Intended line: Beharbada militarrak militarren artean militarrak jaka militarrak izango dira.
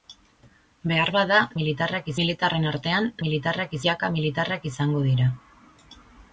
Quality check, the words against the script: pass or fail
pass